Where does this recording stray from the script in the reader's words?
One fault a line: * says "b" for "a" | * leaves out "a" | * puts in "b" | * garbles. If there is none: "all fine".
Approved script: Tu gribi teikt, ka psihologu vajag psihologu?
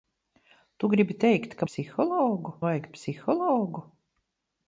all fine